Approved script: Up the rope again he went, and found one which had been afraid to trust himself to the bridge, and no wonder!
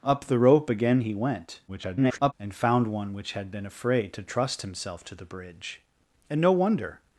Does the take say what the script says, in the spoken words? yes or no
no